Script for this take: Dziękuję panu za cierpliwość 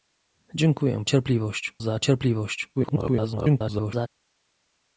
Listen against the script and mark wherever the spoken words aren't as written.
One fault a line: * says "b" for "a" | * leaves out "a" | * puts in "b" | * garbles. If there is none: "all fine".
* says "cierpliwość" for "panu"
* garbles